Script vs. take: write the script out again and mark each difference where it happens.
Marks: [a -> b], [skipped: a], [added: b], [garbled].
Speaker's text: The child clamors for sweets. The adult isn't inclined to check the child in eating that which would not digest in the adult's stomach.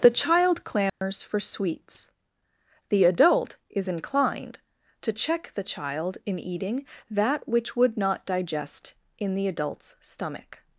The child clamors for sweets. The adult [isn't -> is] inclined to check the child in eating that which would not digest in the adult's stomach.